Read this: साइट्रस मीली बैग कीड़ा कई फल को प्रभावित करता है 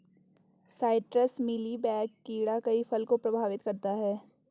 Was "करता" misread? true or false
false